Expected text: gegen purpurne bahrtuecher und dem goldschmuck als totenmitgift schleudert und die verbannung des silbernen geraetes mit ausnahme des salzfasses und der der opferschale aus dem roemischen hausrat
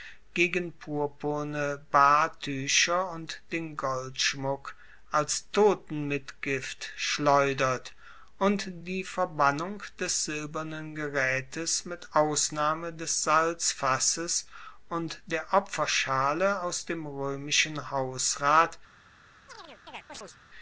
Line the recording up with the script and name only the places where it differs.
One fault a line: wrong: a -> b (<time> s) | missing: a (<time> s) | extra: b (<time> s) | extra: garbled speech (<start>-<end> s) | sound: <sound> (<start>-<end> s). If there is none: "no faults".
wrong: dem -> den (3.5 s)
missing: der (15.5 s)
sound: chirp (19.5-20.4 s)